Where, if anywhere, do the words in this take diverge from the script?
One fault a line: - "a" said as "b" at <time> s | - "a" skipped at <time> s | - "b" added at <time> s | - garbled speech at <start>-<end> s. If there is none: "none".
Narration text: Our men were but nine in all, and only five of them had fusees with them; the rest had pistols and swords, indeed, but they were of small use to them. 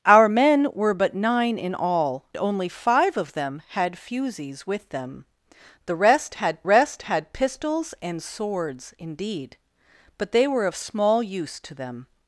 - "and" skipped at 2.2 s
- "rest had" added at 6.6 s